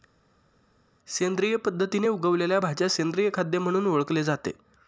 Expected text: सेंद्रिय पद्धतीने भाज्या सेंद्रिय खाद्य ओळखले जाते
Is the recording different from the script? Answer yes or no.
yes